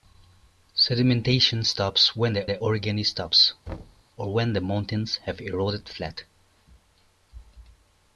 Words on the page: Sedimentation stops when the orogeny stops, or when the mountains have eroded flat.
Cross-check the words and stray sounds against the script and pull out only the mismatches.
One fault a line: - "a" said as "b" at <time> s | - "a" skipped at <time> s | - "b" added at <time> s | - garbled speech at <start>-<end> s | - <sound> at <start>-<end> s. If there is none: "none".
- "the" added at 2.5 s
- thud at 3.7-4.0 s